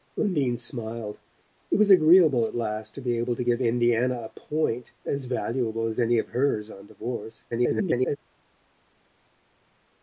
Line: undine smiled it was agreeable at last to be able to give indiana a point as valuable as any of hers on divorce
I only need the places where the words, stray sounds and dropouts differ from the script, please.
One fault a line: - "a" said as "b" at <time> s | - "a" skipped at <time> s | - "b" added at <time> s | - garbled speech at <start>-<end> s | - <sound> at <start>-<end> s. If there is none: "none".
- garbled speech at 7.5-8.2 s